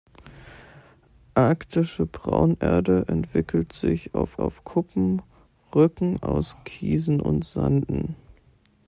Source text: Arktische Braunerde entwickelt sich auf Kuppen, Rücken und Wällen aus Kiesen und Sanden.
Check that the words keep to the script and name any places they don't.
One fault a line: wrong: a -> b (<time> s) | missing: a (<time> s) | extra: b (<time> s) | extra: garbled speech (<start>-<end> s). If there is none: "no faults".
extra: auf (4.4 s)
missing: und Wällen (6.2 s)